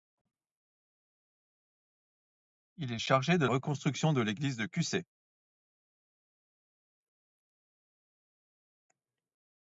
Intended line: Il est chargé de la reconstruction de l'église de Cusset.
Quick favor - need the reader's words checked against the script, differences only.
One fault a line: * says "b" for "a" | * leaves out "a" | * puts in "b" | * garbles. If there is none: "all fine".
* leaves out "la"